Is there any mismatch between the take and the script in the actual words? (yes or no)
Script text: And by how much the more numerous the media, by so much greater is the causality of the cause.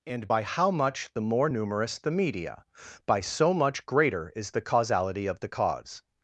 no